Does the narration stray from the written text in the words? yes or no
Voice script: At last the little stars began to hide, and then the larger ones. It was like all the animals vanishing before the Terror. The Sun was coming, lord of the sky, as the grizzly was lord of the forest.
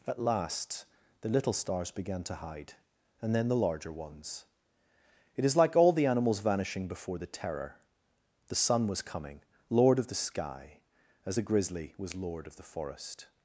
yes